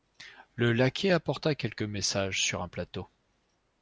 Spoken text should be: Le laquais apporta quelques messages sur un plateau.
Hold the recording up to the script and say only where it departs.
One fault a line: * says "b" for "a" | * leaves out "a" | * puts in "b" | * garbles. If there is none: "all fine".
all fine